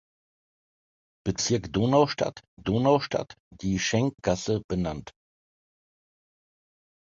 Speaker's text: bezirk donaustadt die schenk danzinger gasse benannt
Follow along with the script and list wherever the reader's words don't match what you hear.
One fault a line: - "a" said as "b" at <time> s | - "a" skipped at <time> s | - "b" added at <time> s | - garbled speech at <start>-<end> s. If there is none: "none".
- "donaustadt" added at 2.6 s
- "danzinger" skipped at 4.1 s